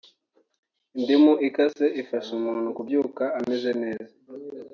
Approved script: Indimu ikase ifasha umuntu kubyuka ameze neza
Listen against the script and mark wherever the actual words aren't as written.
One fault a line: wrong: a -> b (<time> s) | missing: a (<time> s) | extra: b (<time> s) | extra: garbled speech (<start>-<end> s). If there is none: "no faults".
no faults